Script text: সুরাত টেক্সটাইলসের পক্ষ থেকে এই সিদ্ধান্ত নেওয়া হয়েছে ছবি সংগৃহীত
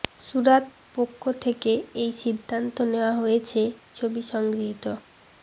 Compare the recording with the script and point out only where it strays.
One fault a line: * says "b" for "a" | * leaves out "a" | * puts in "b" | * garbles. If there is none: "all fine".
* leaves out "টেক্সটাইলসের"